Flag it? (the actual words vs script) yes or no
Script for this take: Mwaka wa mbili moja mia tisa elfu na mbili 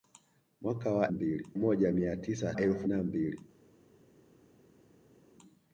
no